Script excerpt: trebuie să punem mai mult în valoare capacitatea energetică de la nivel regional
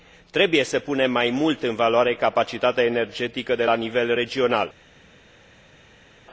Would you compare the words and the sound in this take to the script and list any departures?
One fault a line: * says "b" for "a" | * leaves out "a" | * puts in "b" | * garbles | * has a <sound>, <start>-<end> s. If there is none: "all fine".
all fine